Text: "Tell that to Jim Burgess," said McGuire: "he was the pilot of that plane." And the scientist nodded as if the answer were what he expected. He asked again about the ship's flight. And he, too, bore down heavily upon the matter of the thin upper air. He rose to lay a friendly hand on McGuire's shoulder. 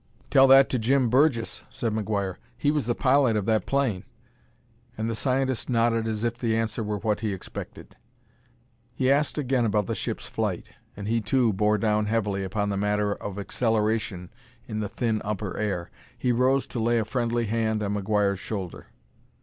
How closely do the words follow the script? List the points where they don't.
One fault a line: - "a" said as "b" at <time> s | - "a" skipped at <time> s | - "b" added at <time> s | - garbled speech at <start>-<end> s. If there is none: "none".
- "acceleration in" added at 13.4 s